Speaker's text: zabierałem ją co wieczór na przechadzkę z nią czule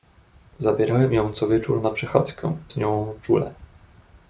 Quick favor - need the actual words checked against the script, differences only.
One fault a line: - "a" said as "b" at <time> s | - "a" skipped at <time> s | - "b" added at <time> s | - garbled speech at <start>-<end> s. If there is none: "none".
none